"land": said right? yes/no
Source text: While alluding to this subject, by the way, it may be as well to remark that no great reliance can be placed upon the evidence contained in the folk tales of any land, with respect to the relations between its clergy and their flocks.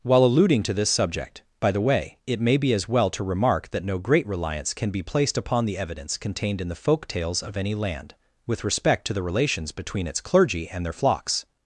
yes